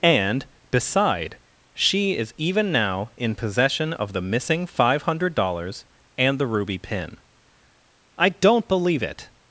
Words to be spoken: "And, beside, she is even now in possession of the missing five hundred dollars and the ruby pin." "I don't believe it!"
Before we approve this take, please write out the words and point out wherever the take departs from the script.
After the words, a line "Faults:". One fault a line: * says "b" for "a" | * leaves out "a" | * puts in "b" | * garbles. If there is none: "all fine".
"And, beside, she is even now in possession of the missing five hundred dollars and the ruby pin." "I don't believe it!"
Faults:
all fine